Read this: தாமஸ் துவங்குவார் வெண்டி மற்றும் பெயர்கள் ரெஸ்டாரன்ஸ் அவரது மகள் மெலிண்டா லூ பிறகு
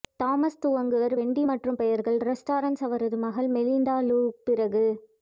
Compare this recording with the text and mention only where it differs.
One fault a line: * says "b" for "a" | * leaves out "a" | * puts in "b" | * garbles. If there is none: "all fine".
all fine